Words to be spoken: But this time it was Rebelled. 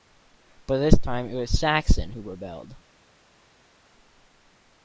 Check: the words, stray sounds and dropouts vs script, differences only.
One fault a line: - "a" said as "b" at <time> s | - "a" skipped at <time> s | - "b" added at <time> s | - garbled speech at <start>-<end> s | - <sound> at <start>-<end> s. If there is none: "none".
- "Saxon who" added at 1.6 s